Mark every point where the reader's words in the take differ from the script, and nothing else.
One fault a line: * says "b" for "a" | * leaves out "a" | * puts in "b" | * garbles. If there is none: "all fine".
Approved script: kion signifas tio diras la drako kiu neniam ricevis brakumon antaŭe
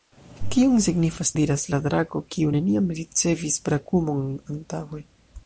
* leaves out "tio"